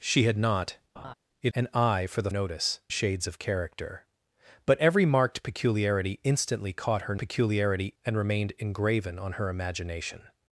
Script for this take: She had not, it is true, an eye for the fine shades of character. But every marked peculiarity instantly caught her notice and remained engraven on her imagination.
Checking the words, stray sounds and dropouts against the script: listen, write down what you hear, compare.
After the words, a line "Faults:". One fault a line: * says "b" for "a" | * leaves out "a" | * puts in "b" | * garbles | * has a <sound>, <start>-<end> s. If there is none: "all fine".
She had not, it an eye for the notice shades of character. But every marked peculiarity instantly caught her peculiarity and remained engraven on her imagination.
Faults:
* has a laugh, 1.0-1.1 s
* leaves out "is true"
* says "notice" for "fine"
* says "peculiarity" for "notice"